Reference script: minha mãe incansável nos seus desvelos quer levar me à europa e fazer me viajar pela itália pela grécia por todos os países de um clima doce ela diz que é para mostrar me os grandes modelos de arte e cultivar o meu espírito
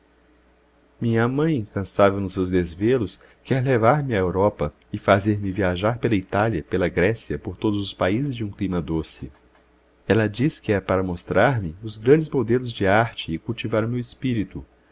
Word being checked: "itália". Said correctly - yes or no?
yes